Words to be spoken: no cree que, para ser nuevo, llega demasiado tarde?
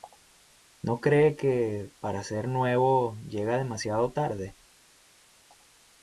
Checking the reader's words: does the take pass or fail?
pass